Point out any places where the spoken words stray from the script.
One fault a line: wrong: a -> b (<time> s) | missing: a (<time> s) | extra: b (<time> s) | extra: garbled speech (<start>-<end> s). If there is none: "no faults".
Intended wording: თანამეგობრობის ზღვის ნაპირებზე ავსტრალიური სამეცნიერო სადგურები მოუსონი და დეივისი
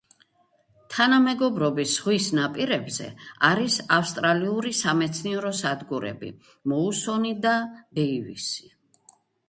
extra: არის (3.5 s)